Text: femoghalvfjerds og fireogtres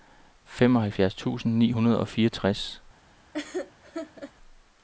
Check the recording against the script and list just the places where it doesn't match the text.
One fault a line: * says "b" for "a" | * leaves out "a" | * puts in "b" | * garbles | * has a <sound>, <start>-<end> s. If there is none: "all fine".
* puts in "tusind ni hundrede"
* has a laugh, 3.3-4.3 s